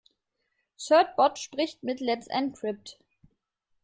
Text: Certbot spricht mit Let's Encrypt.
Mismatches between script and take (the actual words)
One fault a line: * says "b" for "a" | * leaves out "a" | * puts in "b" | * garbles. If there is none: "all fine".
all fine